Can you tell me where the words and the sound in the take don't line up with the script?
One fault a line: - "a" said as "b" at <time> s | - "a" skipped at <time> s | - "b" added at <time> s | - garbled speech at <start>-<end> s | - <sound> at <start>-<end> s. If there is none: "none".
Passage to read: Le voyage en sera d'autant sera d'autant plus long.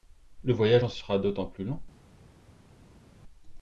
- "sera d'autant" skipped at 1.4 s